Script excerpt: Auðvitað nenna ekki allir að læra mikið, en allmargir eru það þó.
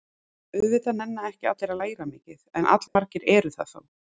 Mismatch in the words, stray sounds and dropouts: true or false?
true